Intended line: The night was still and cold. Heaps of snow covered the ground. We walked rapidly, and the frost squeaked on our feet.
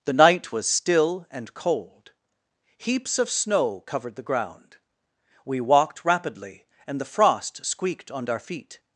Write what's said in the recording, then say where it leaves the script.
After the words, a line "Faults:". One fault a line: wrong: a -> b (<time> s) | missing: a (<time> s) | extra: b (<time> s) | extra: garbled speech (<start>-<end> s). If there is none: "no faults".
The night was still and cold. Heaps of snow covered the ground. We walked rapidly, and the frost squeaked on our feet.
Faults:
no faults